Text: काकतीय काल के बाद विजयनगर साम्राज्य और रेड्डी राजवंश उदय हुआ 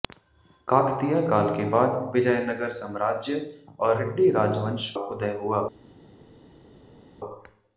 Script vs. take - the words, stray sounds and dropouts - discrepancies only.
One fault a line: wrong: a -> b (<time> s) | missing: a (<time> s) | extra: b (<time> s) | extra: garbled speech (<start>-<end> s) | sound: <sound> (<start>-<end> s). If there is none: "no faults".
no faults